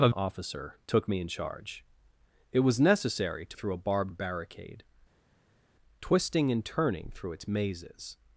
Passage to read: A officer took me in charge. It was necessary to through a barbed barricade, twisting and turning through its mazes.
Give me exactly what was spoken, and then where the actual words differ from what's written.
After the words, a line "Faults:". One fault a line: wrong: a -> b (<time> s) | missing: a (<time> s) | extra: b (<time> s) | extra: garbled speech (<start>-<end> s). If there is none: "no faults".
A officer took me in charge. It was necessary to through a barbed barricade, twisting and turning through its mazes.
Faults:
no faults